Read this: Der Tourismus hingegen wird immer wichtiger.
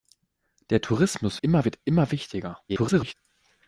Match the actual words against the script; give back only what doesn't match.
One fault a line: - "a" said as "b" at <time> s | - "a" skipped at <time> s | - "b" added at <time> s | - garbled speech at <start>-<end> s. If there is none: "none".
- "hingegen" said as "immer" at 1.4 s
- garbled speech at 2.7-3.1 s